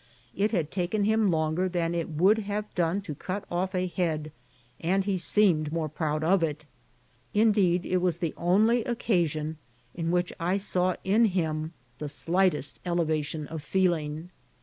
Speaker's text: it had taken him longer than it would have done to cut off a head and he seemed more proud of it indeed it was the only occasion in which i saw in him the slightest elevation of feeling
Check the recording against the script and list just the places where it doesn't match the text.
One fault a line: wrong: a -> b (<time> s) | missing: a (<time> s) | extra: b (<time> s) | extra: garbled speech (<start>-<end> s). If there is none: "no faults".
no faults